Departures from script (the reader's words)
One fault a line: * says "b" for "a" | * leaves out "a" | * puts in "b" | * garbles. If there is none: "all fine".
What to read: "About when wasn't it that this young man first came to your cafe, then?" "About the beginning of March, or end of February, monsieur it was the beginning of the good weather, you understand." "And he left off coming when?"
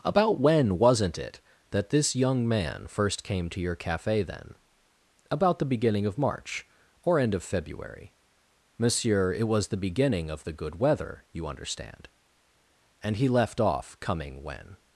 all fine